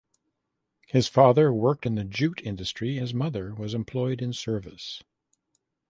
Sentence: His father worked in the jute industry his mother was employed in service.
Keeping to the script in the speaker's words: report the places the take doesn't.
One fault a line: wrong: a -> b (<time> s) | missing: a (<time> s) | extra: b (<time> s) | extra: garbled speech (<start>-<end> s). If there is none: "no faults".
no faults